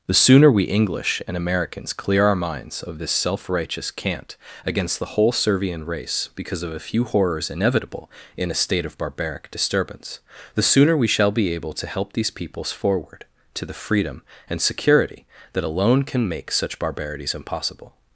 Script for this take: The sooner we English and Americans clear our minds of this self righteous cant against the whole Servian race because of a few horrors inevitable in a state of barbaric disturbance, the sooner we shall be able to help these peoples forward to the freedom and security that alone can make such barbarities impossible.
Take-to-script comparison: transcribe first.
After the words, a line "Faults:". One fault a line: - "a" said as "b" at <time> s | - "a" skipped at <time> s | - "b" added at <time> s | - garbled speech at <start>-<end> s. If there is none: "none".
The sooner we English and Americans clear our minds of this self righteous cant against the whole Servian race because of a few horrors inevitable in a state of barbaric disturbance, the sooner we shall be able to help these peoples forward to the freedom and security that alone can make such barbarities impossible.
Faults:
none